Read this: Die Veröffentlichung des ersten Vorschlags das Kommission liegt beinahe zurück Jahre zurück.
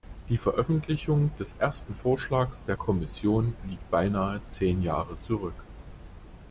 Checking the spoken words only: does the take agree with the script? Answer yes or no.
no